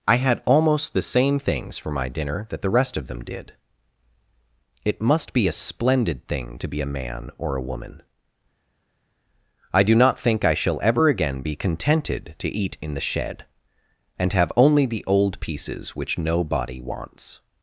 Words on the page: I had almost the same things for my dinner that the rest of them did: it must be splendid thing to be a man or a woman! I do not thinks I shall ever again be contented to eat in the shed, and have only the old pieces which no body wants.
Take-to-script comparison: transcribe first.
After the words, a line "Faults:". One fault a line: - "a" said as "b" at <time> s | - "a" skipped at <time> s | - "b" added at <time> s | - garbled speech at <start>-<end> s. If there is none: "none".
I had almost the same things for my dinner that the rest of them did: it must be a splendid thing to be a man or a woman! I do not think I shall ever again be contented to eat in the shed, and have only the old pieces which no body wants.
Faults:
- "a" added at 5.5 s
- "thinks" said as "think" at 10.2 s